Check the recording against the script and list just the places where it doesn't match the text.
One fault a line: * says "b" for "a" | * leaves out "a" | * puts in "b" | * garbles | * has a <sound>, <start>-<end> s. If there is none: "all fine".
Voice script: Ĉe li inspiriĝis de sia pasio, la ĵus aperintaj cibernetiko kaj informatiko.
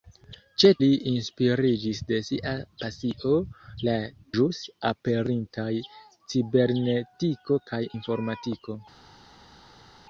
all fine